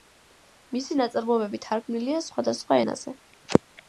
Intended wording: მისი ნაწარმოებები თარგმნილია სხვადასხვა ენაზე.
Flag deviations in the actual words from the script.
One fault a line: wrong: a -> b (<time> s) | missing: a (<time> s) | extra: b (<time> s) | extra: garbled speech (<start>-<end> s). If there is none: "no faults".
no faults